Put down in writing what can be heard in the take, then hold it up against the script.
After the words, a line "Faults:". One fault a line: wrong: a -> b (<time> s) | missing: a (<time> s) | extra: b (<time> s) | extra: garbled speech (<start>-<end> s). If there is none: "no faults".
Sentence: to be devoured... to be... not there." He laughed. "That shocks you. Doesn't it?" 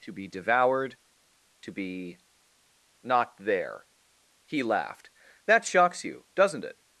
to be devoured... to be... not there." He laughed. "That shocks you. Doesn't it?"
Faults:
no faults